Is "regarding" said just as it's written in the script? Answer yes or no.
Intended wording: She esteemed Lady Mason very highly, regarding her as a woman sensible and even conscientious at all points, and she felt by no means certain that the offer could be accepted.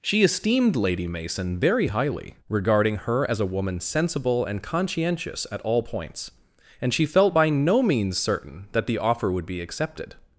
yes